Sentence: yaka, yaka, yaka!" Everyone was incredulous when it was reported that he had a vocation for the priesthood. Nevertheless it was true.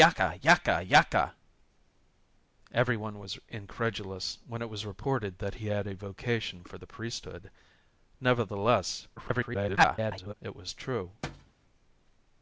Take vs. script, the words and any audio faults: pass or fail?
fail